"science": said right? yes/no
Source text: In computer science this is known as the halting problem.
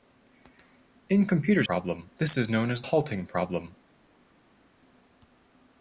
no